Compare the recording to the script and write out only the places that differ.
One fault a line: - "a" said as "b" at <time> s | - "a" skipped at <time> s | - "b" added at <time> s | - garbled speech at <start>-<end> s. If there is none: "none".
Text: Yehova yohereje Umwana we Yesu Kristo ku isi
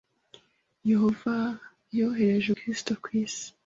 - "Umwana we Yesu" skipped at 2.5 s